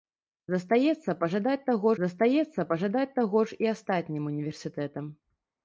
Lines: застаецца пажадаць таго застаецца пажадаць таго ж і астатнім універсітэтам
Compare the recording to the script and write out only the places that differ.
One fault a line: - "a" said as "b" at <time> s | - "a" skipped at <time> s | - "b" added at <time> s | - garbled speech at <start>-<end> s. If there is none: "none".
none